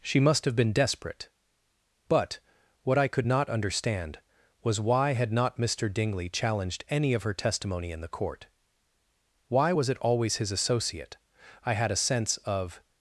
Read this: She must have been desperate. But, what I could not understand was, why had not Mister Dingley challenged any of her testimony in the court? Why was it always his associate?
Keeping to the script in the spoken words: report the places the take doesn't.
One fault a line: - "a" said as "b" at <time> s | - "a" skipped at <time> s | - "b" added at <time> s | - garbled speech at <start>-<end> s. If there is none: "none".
- "I had a sense of" added at 11.6 s